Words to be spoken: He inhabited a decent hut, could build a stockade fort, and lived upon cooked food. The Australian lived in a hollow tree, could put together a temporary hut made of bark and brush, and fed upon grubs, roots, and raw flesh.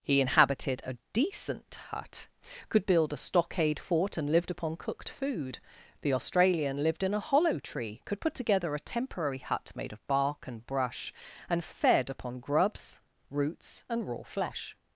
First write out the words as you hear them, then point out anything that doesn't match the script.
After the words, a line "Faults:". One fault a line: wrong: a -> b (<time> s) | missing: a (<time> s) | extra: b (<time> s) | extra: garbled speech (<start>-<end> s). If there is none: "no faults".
He inhabited a decent hut, could build a stockade fort, and lived upon cooked food. The Australian lived in a hollow tree, could put together a temporary hut made of bark and brush, and fed upon grubs, roots, and raw flesh.
Faults:
no faults